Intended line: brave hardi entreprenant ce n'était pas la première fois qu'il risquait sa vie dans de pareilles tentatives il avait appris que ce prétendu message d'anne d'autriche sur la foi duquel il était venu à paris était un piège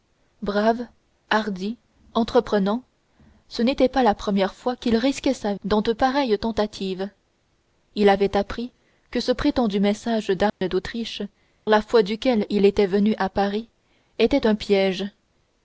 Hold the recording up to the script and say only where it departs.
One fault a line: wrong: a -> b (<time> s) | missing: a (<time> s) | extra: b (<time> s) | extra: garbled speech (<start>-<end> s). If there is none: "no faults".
missing: vie (5.5 s)
missing: sur (11.2 s)